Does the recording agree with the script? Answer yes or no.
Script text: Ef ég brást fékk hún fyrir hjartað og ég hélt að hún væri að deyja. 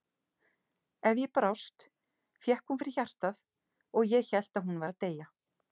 yes